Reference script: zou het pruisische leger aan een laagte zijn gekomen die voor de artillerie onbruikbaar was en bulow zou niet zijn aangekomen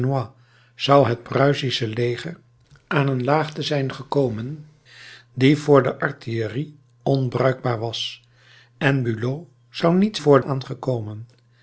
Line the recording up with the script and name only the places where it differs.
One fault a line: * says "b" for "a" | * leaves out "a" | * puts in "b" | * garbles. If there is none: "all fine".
* says "voor" for "zijn"